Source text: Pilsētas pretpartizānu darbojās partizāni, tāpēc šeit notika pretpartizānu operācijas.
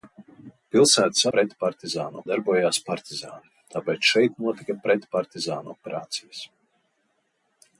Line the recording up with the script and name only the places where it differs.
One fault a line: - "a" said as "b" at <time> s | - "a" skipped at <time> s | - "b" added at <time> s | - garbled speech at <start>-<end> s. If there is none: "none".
none